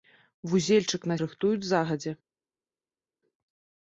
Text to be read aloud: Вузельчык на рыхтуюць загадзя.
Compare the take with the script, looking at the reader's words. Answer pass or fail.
pass